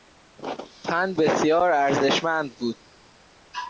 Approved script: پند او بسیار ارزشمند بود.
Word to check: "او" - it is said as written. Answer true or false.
false